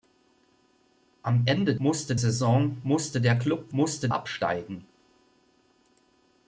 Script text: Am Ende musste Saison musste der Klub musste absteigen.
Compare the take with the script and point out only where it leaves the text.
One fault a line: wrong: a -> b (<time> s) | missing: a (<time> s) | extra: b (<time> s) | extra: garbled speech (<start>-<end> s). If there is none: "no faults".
no faults